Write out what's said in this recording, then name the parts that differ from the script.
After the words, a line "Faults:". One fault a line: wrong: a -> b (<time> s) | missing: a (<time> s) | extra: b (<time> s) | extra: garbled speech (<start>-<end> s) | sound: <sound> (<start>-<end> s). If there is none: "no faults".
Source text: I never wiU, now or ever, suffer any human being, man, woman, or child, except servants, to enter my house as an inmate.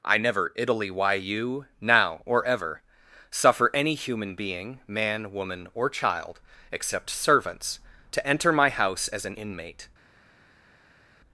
I never italy why you, now or ever, suffer any human being, man, woman, or child, except servants, to enter my house as an inmate.
Faults:
wrong: wiU -> italy why you (0.6 s)